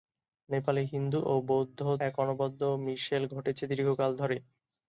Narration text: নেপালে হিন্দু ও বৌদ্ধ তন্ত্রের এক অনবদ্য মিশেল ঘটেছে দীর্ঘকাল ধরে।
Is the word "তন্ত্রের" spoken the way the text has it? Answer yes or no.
no